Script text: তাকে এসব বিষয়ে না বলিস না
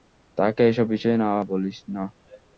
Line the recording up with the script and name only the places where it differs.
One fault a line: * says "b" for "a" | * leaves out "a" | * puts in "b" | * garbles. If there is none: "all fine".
all fine